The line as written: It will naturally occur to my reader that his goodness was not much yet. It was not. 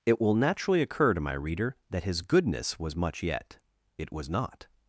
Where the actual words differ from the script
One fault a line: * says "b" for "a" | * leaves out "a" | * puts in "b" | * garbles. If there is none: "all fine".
* leaves out "not"